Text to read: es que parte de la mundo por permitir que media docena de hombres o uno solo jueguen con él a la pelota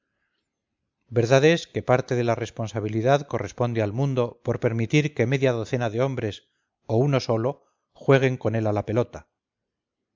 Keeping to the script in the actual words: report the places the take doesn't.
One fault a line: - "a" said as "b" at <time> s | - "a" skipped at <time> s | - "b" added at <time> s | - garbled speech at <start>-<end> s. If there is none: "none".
- "responsabilidad corresponde al" added at 2.3 s